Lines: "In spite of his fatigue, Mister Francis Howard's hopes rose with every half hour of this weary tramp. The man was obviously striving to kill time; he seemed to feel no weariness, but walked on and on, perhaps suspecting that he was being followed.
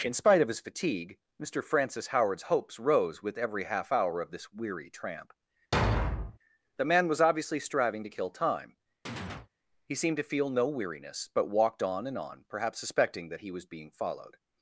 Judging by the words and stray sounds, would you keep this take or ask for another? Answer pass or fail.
fail